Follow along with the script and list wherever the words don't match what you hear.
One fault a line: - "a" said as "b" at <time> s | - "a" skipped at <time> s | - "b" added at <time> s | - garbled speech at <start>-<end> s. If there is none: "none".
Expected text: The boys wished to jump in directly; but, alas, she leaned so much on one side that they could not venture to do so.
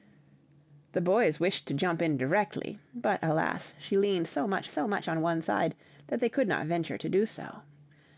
- "so much" added at 4.7 s